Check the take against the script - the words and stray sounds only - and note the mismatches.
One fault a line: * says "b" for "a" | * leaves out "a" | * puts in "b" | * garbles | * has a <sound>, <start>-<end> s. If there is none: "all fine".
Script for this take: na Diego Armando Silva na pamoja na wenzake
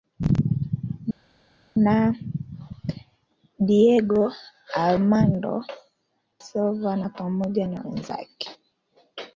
all fine